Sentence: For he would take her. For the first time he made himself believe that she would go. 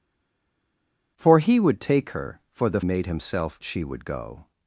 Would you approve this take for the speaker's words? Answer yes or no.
no